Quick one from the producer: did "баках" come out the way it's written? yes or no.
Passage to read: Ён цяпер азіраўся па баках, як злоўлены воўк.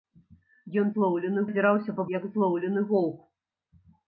no